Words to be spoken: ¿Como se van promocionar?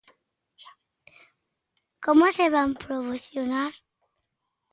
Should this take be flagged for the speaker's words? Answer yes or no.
no